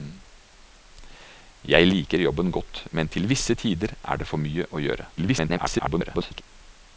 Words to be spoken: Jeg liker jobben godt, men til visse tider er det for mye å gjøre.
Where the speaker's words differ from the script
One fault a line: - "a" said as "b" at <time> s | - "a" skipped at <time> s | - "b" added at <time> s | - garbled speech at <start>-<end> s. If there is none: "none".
- garbled speech at 5.2-6.4 s